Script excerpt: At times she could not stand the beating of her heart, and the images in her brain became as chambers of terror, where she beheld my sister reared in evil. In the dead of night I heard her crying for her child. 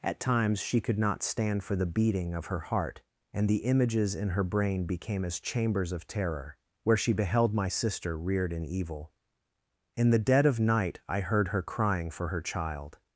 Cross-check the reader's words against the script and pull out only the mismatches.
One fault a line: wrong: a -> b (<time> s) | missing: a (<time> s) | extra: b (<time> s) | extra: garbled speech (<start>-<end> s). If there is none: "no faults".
extra: for (1.6 s)